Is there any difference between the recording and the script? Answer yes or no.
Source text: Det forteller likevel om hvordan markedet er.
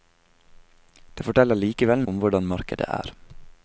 no